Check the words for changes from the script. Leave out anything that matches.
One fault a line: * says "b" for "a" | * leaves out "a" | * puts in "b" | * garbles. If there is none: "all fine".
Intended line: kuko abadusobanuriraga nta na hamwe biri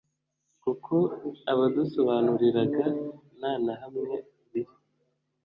all fine